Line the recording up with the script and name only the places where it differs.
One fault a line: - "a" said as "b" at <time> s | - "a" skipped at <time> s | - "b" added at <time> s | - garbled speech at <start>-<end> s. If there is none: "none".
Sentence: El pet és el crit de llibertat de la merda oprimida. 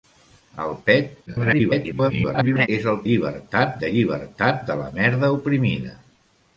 - garbled speech at 1.3-2.7 s
- "crit" said as "llibertat" at 3.1 s